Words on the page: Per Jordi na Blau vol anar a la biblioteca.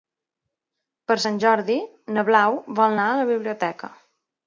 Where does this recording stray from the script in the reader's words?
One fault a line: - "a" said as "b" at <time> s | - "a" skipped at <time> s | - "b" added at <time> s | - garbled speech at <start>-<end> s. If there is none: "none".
- "Sant" added at 1.2 s